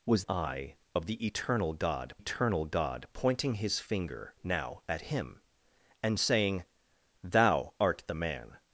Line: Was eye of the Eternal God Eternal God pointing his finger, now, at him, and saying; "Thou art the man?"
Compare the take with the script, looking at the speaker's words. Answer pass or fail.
pass